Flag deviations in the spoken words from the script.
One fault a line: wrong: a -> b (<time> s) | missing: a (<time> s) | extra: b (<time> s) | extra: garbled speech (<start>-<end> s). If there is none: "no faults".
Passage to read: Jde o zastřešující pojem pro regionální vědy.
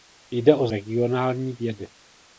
missing: zastřešující pojem pro (0.7 s)